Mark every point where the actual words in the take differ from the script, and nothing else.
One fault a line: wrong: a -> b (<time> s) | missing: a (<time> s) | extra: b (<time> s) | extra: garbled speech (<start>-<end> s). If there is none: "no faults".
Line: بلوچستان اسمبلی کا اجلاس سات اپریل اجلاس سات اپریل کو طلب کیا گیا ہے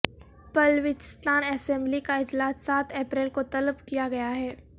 missing: اجلاس سات اپریل (3.3 s)